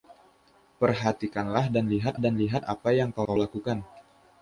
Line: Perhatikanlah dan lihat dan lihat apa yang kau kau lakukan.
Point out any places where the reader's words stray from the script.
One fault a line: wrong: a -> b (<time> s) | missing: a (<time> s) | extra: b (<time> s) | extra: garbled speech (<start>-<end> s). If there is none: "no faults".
no faults